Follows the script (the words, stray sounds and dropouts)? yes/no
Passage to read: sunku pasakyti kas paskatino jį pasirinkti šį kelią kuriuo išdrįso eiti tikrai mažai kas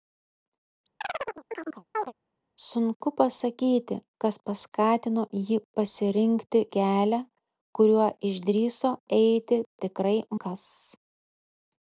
no